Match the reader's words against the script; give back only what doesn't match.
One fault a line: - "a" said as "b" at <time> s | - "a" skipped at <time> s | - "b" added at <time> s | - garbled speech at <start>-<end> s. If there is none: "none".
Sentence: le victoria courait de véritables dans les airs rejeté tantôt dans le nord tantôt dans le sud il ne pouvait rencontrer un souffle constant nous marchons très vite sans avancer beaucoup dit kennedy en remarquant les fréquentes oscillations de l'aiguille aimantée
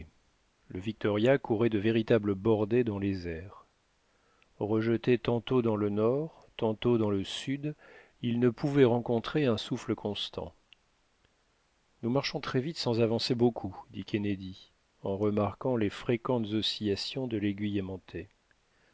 - "bordées" added at 2.3 s